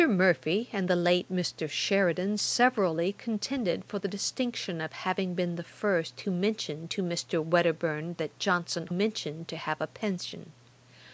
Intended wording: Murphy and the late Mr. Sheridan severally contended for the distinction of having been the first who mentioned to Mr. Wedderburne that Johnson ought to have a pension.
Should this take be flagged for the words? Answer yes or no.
yes